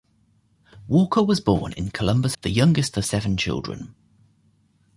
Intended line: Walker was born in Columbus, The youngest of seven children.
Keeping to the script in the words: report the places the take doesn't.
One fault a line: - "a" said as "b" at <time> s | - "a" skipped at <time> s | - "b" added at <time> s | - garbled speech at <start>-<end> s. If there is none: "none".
none